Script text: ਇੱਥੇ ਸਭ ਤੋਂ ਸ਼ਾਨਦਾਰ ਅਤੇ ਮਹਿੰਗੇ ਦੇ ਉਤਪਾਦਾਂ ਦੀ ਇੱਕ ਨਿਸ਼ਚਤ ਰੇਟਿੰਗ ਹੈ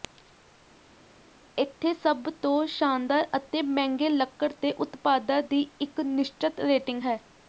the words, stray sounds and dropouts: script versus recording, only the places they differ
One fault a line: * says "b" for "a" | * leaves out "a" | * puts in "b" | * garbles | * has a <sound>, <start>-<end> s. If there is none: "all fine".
* puts in "ਲੱਕੜ"